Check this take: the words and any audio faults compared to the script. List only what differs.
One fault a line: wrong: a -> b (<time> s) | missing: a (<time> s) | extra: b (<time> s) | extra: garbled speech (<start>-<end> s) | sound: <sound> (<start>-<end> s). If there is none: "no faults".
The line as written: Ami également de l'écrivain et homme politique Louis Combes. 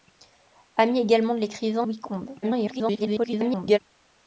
missing: et homme politique (1.9 s)
extra: garbled speech (2.4-3.8 s)